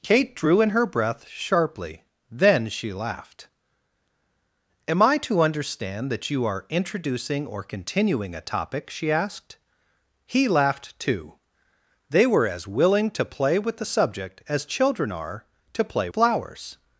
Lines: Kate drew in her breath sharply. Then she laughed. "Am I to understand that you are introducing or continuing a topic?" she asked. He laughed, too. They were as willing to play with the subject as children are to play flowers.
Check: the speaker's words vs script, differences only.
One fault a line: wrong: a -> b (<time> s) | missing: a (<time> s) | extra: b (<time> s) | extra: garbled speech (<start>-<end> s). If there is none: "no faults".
no faults